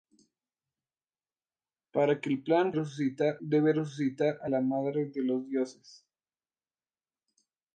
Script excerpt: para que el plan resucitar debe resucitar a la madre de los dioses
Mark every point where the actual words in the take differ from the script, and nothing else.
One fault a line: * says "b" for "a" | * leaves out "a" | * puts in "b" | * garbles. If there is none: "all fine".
all fine